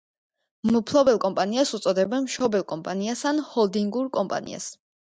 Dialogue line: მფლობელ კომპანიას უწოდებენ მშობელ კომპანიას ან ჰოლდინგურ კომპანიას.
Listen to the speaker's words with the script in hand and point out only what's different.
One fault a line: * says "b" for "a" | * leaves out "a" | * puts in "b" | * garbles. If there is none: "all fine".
all fine